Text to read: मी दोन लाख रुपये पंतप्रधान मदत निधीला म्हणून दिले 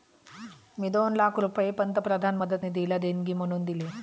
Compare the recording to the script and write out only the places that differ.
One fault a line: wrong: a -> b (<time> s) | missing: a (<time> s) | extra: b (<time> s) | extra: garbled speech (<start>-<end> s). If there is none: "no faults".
extra: देणगी (3.0 s)